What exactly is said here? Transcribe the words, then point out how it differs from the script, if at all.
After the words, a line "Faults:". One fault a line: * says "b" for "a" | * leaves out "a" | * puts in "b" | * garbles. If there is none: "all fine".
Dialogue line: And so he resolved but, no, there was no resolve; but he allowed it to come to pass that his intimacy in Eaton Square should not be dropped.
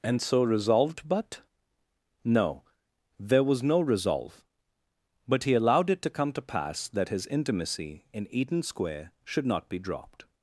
And so resolved but, no, there was no resolve; but he allowed it to come to pass that his intimacy in Eaton Square should not be dropped.
Faults:
* leaves out "he"